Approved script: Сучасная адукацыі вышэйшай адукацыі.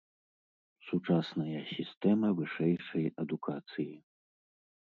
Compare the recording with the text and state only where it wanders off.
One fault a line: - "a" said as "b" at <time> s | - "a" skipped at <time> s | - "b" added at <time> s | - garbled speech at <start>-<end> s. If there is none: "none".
- "адукацыі" said as "сістэма" at 1.8 s